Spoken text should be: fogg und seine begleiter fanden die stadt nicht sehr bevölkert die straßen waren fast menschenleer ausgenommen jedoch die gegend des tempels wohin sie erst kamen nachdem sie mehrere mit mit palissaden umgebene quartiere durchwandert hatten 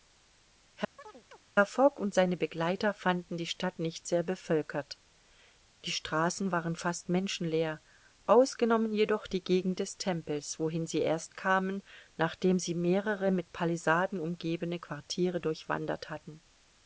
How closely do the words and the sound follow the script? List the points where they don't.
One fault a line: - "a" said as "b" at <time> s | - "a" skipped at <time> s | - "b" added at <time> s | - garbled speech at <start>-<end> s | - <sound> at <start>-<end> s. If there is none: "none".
- chirp at 1.0-1.4 s
- "mit" skipped at 13.5 s